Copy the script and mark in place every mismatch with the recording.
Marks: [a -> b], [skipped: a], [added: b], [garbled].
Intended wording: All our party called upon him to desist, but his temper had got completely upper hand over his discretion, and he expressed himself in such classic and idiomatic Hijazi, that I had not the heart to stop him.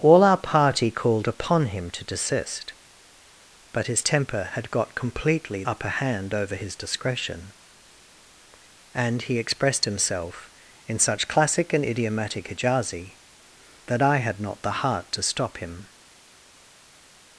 All our party called upon him to desist, but his temper had got completely upper hand over his discretion, and he expressed himself in such classic and idiomatic Hijazi, that I had not the heart to stop him.